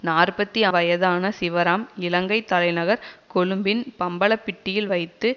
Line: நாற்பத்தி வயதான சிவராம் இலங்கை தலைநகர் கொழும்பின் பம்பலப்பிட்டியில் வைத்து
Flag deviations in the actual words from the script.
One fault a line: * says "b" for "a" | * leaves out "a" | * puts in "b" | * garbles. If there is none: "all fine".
all fine